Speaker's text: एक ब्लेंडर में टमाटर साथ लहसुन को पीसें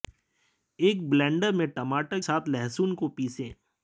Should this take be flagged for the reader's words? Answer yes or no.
no